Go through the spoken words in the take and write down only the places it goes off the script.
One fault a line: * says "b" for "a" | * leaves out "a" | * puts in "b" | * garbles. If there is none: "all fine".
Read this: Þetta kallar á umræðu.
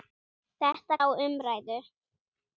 * leaves out "kallar"